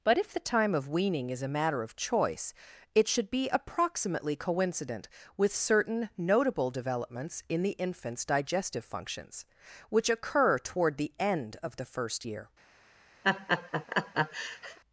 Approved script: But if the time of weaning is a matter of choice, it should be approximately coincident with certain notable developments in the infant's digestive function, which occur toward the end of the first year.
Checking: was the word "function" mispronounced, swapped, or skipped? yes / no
yes